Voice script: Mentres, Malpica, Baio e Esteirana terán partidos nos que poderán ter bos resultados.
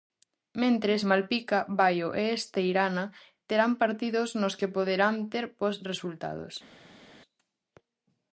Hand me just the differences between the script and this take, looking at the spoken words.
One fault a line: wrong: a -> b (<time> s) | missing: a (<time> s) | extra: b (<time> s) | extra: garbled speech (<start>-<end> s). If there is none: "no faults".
no faults